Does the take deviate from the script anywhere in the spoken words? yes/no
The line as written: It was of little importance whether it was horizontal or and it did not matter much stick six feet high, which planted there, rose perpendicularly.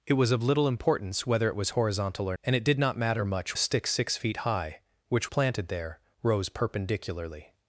no